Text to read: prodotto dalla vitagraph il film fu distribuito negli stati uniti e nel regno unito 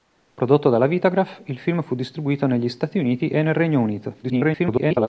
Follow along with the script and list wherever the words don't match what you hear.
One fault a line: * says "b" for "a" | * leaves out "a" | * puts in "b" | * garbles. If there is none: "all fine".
* garbles